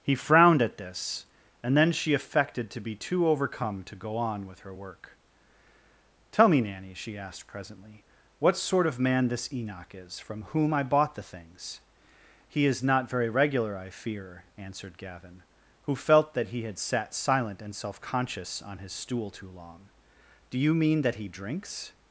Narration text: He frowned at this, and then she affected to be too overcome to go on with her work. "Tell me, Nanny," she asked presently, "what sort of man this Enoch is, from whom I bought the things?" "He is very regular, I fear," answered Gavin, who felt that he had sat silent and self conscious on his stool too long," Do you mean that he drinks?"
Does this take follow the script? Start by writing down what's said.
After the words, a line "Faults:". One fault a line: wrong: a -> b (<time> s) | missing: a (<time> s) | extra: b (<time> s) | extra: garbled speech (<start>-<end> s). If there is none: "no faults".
He frowned at this, and then she affected to be too overcome to go on with her work. "Tell me, Nanny," she asked presently, "what sort of man this Enoch is, from whom I bought the things?" "He is not very regular, I fear," answered Gavin, who felt that he had sat silent and self conscious on his stool too long," Do you mean that he drinks?"
Faults:
extra: not (12.8 s)